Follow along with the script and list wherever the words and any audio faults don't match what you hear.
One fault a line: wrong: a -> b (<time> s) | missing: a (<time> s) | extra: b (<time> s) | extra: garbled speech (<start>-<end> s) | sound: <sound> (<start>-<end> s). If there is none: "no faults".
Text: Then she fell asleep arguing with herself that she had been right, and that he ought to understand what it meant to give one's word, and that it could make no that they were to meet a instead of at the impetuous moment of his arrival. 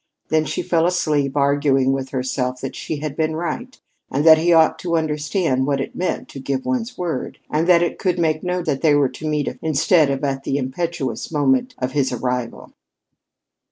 no faults